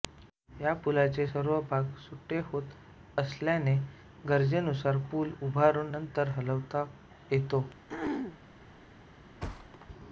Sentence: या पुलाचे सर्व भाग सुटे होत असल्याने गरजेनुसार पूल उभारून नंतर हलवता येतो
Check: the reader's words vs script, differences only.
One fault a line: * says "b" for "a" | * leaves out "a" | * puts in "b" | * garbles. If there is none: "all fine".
all fine